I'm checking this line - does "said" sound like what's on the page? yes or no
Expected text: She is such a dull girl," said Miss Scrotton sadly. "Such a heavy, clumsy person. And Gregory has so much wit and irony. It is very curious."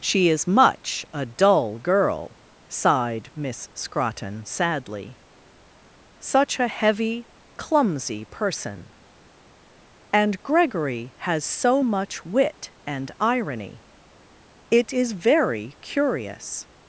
no